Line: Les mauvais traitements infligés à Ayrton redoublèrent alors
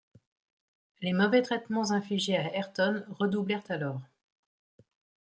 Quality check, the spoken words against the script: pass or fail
pass